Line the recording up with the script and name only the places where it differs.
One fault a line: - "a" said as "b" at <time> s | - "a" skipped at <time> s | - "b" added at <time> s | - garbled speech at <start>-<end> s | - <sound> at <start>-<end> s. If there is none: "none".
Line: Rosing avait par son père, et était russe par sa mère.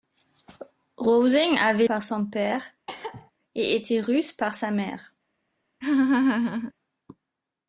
- cough at 2.9-3.3 s
- laugh at 5.8-6.7 s